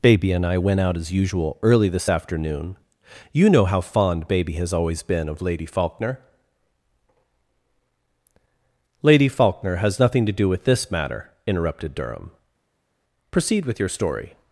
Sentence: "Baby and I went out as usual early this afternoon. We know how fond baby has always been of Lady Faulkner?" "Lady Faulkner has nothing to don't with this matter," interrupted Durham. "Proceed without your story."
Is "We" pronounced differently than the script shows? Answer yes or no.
yes